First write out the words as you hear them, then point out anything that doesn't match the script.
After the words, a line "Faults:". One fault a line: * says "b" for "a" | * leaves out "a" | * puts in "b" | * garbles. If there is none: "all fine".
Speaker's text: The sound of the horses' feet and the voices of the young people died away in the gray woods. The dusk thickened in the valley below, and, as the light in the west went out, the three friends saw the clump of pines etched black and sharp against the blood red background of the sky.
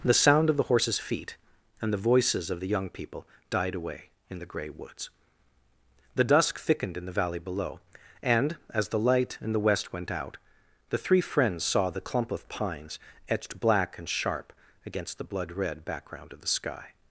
The sound of the horses' feet and the voices of the young people died away in the gray woods. The dusk thickened in the valley below, and, as the light in the west went out, the three friends saw the clump of pines etched black and sharp against the blood red background of the sky.
Faults:
all fine